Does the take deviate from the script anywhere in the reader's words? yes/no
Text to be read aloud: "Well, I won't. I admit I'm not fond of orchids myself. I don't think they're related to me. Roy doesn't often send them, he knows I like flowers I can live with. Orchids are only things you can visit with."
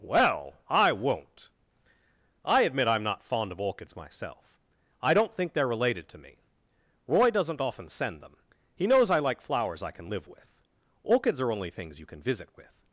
no